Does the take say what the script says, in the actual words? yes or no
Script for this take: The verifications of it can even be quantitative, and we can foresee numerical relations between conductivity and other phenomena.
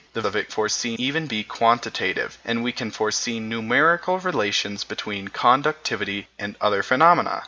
no